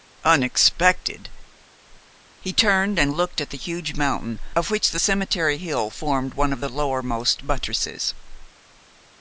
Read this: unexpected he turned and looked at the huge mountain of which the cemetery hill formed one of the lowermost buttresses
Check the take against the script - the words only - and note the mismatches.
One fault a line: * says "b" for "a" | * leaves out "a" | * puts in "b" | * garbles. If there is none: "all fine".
all fine